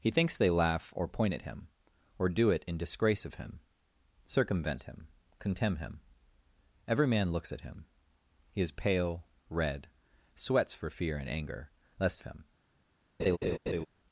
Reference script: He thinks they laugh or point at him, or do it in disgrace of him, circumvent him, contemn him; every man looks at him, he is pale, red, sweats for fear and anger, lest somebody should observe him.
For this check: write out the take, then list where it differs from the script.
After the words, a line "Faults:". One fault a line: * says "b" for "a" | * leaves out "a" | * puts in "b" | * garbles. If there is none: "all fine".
He thinks they laugh or point at him, or do it in disgrace of him, circumvent him, contemn him; every man looks at him, he is pale, red, sweats for fear and anger, lest him.
Faults:
* leaves out "somebody should observe"